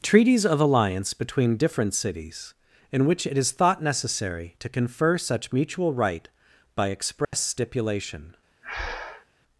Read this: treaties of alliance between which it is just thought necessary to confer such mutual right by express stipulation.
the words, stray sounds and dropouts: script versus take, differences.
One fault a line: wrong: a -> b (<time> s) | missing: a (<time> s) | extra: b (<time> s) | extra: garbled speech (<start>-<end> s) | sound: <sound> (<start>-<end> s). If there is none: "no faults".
extra: different cities in (1.6 s)
missing: just (3.5 s)
sound: dropout (7.2-7.3 s)
sound: breath (8.6-9.3 s)